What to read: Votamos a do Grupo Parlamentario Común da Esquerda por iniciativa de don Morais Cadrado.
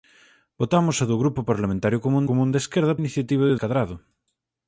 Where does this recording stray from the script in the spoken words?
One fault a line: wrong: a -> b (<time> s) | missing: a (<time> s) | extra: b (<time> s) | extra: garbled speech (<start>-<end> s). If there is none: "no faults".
extra: Común (2.3 s)
missing: por (2.9 s)
missing: don Morais (3.6 s)